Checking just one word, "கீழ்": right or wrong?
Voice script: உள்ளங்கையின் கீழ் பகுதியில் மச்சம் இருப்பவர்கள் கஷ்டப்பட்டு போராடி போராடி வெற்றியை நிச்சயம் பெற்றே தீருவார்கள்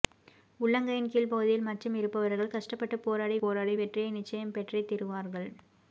right